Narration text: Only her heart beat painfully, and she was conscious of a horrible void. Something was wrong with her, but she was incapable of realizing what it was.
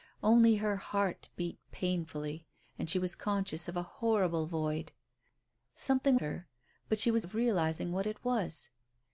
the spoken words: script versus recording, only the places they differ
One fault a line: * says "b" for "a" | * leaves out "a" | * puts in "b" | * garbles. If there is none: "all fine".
* leaves out "was wrong with"
* leaves out "incapable"